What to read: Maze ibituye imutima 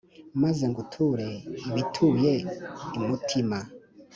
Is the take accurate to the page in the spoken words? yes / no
no